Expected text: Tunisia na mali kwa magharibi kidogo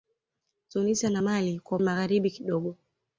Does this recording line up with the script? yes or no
yes